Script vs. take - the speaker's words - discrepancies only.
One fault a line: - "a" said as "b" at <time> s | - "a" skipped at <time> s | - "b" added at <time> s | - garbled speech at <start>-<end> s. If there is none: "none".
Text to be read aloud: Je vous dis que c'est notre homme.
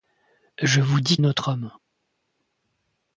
- "que c'est" skipped at 1.2 s